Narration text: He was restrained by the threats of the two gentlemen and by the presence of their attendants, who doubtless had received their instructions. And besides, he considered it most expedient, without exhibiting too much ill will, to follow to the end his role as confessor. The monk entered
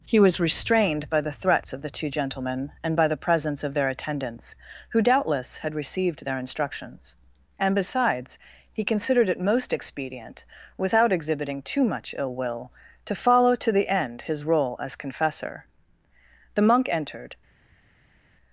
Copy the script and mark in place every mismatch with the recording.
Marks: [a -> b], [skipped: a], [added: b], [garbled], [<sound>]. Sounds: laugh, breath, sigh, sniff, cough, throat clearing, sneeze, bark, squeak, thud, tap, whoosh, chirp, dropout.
He was restrained by the threats of the two gentlemen and by the presence of their attendants, who doubtless had received their instructions. And besides, he considered it most expedient, without exhibiting too much ill will, to follow to the end his role as confessor. The monk entered